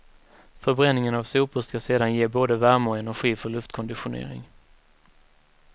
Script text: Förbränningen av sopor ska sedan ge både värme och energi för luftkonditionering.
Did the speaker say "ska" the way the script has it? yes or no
yes